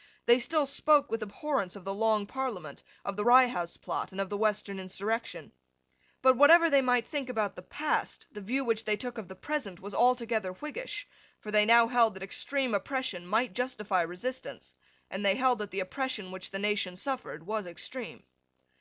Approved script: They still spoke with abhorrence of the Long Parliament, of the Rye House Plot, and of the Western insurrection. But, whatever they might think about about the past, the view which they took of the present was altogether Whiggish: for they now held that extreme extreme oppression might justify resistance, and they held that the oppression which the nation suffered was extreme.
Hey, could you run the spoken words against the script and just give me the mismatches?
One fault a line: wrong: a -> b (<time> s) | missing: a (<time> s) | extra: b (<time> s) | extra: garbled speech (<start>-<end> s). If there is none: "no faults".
missing: about (7.5 s)
missing: extreme (12.7 s)